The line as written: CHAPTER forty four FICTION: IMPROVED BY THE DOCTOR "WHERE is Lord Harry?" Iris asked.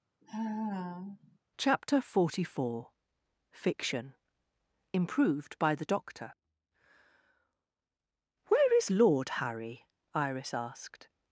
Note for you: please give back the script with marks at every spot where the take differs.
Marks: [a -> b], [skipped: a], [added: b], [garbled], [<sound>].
[sigh] CHAPTER forty four FICTION: IMPROVED BY THE DOCTOR "WHERE is Lord Harry?" Iris asked.